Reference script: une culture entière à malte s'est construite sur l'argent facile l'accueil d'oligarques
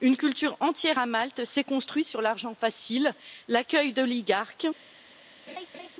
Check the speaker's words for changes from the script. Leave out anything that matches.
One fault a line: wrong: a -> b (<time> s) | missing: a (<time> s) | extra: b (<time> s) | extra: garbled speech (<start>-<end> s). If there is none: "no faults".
no faults